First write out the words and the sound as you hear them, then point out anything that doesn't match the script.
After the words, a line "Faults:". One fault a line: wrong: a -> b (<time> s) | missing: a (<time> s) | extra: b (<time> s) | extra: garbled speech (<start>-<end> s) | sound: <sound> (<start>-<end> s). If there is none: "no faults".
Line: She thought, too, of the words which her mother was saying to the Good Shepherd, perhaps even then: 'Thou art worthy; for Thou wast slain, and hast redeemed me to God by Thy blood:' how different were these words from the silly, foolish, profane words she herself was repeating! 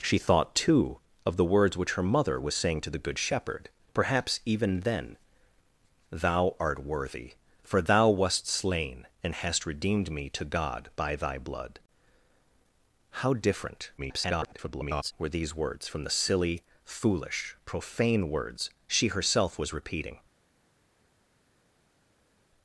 She thought, too, of the words which her mother was saying to the Good Shepherd, perhaps even then: 'Thou art worthy; for Thou wast slain, and hast redeemed me to God by Thy blood:' how different [garbled] were these words from the silly, foolish, profane words she herself was repeating!
Faults:
extra: garbled speech (14.0-15.1 s)